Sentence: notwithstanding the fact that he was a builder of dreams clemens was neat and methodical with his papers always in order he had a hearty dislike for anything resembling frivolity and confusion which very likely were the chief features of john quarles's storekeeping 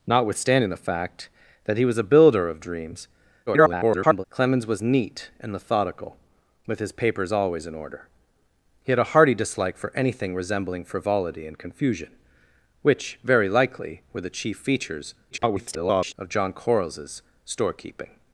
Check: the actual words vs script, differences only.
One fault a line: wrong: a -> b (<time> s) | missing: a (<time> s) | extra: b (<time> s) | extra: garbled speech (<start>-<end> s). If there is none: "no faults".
extra: garbled speech (3.5-4.2 s)
extra: garbled speech (15.3-16.1 s)